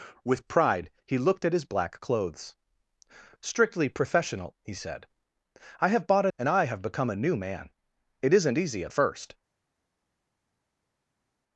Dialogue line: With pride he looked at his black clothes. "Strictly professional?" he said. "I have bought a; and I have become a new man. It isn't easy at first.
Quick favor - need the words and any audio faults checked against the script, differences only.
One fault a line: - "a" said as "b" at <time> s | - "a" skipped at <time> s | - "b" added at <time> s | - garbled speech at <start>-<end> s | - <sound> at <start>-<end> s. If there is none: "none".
none